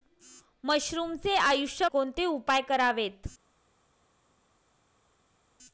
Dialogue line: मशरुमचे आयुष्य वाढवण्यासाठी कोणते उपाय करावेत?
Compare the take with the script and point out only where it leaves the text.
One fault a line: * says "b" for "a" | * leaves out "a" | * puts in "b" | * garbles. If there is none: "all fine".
* leaves out "वाढवण्यासाठी"